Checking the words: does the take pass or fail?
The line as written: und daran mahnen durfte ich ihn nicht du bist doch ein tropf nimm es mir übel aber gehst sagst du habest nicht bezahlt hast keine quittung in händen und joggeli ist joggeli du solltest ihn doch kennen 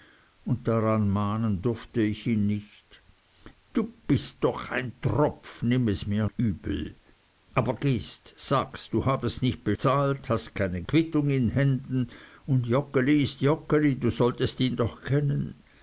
pass